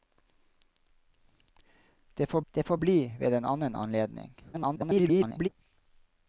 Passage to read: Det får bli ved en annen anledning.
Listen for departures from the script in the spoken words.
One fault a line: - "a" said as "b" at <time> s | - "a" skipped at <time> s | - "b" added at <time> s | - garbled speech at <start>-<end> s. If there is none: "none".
- "det får" added at 2.5 s
- garbled speech at 4.5-5.5 s